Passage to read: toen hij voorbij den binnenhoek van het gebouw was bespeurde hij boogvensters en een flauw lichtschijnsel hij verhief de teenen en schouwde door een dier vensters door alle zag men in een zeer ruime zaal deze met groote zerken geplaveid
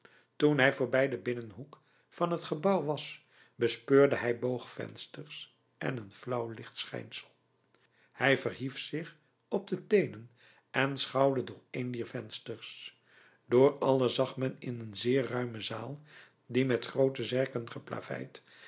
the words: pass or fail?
fail